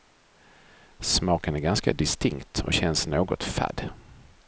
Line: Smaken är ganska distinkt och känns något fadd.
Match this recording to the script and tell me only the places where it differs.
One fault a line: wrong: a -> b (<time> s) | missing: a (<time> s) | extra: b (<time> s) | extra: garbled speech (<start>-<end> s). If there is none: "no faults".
no faults